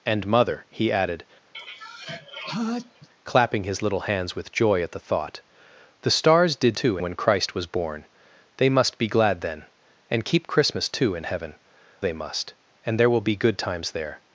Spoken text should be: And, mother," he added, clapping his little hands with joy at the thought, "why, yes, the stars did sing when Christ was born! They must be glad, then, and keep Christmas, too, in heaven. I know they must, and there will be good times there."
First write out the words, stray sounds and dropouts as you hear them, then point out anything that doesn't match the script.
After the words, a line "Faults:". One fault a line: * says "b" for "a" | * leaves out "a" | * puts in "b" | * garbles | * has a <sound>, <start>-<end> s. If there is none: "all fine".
And, mother," he added, clapping his little hands with joy at the thought, "the stars did too when Christ was born! They must be glad, then, and keep Christmas, too, in heaven. they must, and there will be good times there."
Faults:
* has a sneeze, 1.5-3.1 s
* leaves out "why yes"
* says "too" for "sing"
* leaves out "I know"